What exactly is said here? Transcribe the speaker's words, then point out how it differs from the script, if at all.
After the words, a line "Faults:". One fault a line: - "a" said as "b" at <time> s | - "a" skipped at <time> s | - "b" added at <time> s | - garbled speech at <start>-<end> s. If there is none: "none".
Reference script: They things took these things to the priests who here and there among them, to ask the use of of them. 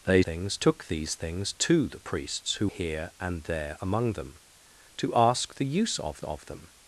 They things took these things to the priests who here and there among them, to ask the use of of them.
Faults:
none